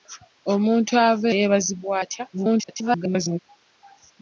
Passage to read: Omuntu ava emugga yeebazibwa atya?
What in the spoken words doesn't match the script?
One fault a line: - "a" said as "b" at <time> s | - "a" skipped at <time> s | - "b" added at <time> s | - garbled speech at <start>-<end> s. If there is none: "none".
- "emugga" skipped at 1.3 s
- garbled speech at 2.3-3.4 s